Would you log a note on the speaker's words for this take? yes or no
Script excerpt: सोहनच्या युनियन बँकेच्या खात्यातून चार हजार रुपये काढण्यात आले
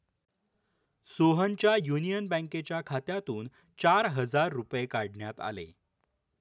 no